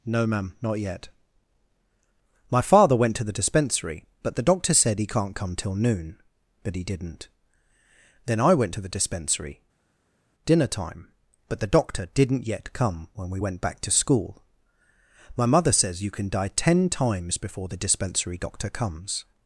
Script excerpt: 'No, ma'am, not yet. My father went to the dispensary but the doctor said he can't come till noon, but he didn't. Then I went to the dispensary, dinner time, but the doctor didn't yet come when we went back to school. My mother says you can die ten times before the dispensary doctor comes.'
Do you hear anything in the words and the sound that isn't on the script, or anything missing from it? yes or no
no